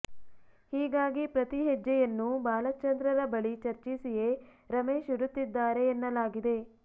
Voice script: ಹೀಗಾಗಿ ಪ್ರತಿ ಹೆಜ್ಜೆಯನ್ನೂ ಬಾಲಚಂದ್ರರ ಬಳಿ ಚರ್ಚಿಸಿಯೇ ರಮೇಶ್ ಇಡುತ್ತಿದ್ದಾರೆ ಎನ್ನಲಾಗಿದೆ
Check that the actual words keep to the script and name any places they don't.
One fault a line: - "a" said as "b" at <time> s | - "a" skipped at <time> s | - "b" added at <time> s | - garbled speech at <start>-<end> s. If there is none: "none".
none